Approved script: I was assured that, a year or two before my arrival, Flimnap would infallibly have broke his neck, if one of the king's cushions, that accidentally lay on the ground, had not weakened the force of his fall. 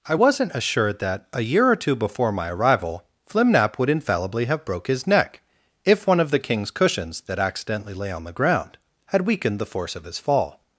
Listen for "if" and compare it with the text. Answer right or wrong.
right